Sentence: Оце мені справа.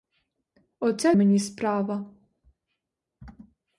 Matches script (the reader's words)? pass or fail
pass